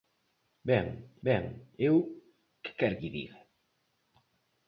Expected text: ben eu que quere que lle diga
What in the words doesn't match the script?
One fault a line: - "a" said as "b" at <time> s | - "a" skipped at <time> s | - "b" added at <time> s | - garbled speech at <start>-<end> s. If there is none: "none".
- "ben" added at 1.3 s
- "que" skipped at 3.0 s